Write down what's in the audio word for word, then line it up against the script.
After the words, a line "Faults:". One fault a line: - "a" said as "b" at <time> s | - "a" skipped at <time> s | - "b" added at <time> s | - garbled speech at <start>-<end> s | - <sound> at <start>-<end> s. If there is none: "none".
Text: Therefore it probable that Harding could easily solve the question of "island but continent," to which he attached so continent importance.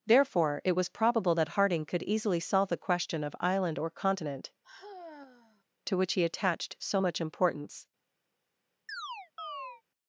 Therefore it was probable that Harding could easily solve the question of "island or continent," to which he attached so much importance.
Faults:
- "was" added at 0.8 s
- "but" said as "or" at 3.8 s
- sigh at 4.6-5.6 s
- "continent" said as "much" at 7.0 s
- chirp at 8.9-9.8 s